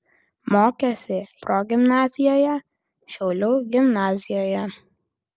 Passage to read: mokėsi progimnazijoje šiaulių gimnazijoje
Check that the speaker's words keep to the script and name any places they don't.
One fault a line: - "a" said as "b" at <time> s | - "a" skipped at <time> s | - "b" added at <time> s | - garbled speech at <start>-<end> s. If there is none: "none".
none